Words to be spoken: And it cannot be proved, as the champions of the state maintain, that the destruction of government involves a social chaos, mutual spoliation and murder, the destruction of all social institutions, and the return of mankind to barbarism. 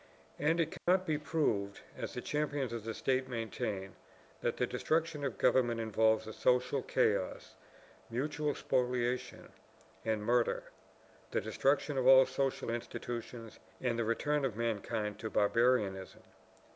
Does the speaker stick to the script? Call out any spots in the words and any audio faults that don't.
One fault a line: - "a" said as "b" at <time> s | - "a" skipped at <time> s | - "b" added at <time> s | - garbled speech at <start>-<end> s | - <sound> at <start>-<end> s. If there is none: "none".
- dropout at 0.8-0.9 s